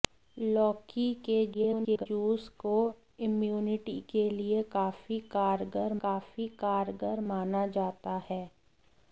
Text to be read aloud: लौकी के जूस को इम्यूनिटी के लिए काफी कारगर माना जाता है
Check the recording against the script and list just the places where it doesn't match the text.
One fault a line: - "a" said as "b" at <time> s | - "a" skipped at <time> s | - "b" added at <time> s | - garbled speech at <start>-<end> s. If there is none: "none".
- garbled speech at 1.5-2.1 s
- "काफी कारगर" added at 6.0 s